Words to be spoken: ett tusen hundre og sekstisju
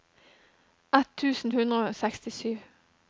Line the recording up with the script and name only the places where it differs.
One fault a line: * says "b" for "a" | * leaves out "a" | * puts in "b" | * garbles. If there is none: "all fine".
all fine